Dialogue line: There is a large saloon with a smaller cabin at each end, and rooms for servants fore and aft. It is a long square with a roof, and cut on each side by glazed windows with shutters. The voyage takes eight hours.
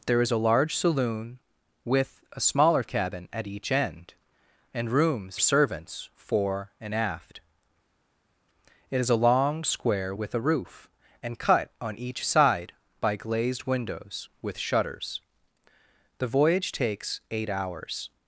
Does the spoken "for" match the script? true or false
false